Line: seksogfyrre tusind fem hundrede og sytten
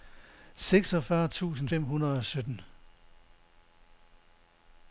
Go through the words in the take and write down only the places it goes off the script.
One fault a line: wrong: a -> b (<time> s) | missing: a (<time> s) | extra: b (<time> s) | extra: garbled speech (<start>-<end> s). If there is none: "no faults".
no faults